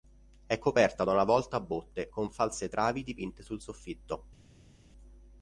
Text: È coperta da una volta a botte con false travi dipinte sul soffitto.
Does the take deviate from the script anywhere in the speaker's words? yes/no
no